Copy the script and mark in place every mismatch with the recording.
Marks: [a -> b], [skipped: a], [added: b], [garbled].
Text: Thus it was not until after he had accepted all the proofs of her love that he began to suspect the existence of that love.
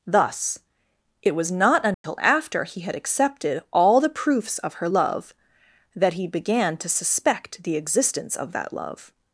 Thus it was not until after he had accepted all the proofs of her love that he began to suspect the existence of that love.